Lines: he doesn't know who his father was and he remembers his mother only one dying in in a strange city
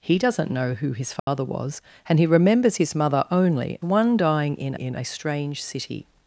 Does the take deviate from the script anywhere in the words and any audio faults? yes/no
yes